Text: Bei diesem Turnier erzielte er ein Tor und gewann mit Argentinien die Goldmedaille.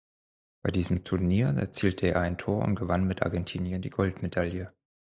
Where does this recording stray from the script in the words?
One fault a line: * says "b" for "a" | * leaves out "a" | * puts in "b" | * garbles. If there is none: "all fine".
all fine